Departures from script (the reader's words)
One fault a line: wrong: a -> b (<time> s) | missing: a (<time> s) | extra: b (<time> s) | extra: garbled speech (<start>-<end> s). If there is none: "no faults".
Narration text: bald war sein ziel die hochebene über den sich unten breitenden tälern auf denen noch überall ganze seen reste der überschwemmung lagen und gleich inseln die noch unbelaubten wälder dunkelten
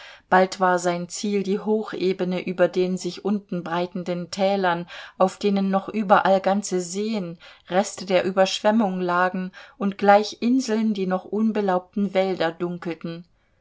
no faults